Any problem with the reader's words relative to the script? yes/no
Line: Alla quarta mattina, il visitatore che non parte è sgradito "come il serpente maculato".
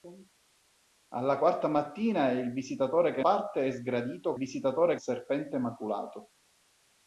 yes